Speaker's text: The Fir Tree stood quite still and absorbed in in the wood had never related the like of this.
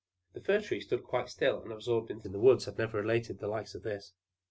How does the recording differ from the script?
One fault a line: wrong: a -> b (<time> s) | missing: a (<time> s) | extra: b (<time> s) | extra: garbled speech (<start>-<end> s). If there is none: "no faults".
no faults